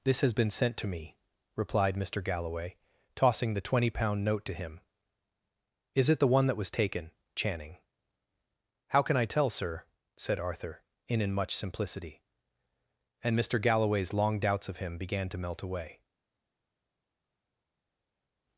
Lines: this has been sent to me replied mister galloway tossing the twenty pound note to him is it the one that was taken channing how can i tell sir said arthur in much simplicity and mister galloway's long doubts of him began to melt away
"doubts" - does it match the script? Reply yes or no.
yes